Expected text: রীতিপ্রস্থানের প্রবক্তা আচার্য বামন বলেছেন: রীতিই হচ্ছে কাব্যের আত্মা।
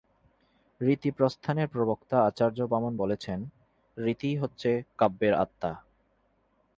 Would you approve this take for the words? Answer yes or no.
yes